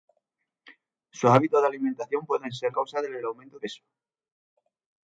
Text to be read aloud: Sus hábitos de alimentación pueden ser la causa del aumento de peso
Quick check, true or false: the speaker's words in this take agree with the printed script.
false